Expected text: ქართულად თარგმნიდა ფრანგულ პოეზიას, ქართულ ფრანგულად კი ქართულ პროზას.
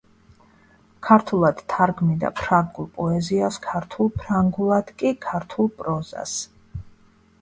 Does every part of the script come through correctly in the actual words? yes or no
yes